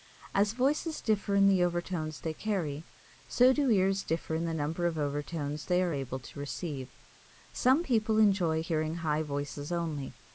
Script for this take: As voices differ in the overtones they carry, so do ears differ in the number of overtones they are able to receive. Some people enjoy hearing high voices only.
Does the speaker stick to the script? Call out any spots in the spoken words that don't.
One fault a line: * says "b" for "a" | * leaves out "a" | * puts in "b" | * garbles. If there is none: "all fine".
all fine